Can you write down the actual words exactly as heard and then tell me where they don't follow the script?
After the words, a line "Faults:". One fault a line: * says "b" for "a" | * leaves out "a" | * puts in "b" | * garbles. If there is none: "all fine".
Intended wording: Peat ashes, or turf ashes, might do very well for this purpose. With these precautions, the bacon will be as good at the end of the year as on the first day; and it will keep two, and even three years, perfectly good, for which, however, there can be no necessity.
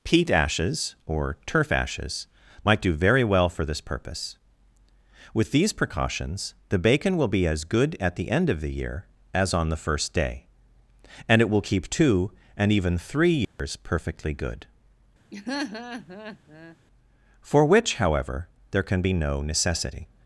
Peat ashes, or turf ashes, might do very well for this purpose. With these precautions, the bacon will be as good at the end of the year as on the first day; and it will keep two, and even three years, perfectly good, for which, however, there can be no necessity.
Faults:
all fine